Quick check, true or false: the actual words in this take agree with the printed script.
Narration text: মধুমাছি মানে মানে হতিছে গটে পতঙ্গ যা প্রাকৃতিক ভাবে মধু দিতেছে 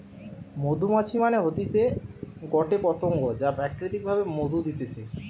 false